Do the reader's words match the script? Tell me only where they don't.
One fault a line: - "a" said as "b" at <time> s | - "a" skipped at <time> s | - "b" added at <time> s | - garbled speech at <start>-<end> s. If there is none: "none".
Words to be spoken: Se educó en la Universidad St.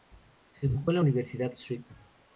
none